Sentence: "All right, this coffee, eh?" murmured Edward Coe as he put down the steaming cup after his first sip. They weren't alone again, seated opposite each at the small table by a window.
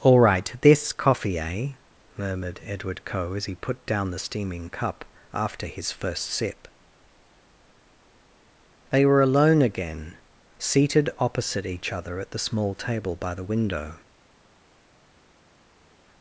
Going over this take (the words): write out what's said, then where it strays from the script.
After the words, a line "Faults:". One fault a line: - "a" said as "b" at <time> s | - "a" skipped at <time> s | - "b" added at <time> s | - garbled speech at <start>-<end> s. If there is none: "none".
"All right, this coffee, eh?" murmured Edward Coe as he put down the steaming cup after his first sip. They were alone again, seated opposite each other at the small table by the window.
Faults:
- "weren't" said as "were" at 9.1 s
- "other" added at 11.9 s
- "a" said as "the" at 13.3 s